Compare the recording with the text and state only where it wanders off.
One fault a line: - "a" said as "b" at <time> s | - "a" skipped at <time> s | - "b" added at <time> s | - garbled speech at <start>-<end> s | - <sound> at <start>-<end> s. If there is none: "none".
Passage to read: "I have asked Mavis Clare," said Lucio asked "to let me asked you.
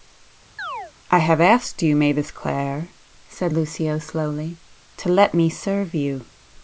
- chirp at 0.6-0.9 s
- "you" added at 1.8 s
- "asked" said as "slowly" at 4.0 s
- "asked" said as "serve" at 5.5 s